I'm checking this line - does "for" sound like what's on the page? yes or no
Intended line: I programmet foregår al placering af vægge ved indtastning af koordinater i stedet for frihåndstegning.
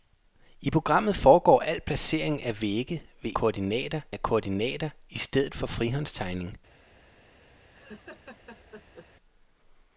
yes